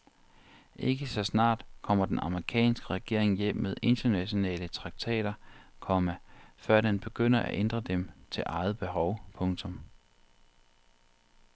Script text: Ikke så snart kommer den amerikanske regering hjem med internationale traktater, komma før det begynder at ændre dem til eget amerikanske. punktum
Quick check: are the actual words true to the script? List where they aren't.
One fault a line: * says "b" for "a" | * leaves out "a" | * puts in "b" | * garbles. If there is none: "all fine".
* says "den" for "det"
* says "behov" for "amerikanske"